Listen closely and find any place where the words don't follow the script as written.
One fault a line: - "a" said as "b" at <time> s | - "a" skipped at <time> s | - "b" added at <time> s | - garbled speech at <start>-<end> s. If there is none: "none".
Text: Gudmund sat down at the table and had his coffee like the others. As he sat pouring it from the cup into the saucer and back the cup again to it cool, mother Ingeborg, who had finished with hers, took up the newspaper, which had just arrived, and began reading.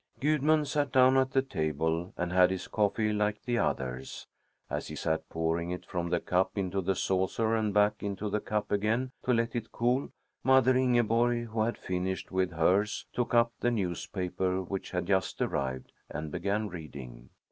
- "into" added at 8.0 s
- "let" added at 9.3 s